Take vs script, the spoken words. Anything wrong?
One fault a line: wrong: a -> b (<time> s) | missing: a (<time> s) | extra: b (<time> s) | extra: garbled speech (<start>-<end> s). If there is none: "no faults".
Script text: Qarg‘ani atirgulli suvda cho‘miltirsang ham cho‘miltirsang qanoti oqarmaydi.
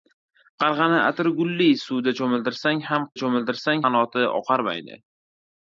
no faults